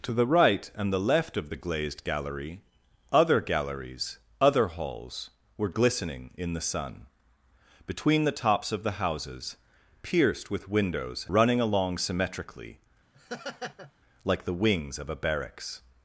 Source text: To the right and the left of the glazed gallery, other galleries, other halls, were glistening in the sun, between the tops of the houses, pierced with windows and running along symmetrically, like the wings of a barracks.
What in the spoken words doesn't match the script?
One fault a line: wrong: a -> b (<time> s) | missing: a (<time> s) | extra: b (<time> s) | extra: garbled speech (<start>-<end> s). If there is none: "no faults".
missing: and (11.3 s)